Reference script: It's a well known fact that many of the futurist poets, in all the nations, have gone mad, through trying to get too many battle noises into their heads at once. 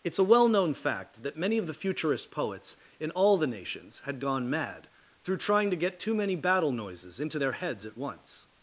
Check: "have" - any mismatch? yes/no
yes